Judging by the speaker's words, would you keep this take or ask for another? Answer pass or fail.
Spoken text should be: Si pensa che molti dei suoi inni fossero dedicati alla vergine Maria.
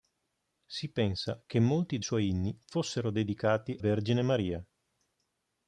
fail